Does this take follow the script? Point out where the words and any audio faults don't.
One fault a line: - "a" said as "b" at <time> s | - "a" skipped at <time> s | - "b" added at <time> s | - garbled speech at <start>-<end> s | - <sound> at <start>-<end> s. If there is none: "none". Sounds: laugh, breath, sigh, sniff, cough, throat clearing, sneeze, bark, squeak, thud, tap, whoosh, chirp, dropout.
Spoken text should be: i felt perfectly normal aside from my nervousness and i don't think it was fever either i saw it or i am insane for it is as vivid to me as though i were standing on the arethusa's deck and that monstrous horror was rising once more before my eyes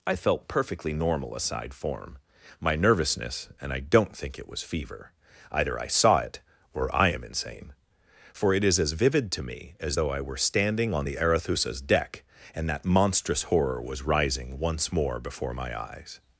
- "from" said as "form" at 1.7 s